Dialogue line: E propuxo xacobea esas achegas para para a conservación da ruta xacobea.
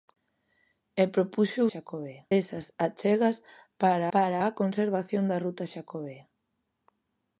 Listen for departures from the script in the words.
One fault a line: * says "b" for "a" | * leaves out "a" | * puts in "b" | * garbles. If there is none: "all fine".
all fine